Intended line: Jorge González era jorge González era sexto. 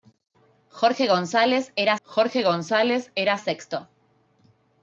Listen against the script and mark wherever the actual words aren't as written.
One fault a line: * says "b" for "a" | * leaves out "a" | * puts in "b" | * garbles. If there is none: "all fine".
all fine